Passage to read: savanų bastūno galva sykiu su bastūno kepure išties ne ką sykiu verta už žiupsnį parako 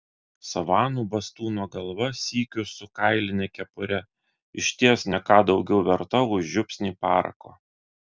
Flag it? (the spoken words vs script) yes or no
yes